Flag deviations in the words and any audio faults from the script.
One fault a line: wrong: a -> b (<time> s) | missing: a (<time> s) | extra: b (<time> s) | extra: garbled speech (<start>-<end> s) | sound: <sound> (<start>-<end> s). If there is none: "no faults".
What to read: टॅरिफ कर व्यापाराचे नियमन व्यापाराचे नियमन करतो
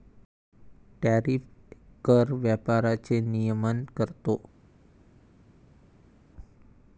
missing: व्यापाराचे नियमन (3.8 s)